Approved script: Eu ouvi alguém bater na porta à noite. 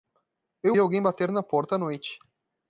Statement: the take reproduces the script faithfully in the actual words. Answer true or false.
false